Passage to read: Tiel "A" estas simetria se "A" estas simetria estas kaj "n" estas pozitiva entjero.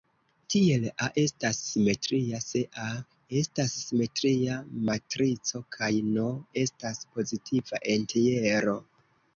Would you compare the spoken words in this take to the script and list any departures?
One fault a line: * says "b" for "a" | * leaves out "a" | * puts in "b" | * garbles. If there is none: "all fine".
* says "matrico" for "estas"